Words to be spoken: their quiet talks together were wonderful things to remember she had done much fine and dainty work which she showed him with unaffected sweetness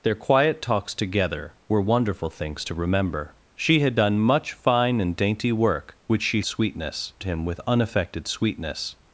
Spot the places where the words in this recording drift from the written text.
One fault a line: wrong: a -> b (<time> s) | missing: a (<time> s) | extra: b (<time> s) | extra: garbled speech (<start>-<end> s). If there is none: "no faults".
wrong: showed -> sweetness (6.4 s)